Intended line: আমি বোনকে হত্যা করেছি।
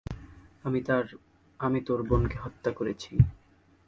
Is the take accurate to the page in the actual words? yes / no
no